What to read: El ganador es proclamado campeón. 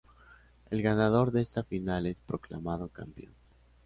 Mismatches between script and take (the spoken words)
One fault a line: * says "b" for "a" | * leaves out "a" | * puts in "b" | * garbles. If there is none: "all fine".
* puts in "de esta final"